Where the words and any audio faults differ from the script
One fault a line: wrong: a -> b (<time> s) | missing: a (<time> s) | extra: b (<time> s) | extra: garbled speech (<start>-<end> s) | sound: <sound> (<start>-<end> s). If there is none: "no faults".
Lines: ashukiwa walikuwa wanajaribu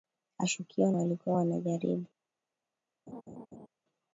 sound: laugh (3.1-3.7 s)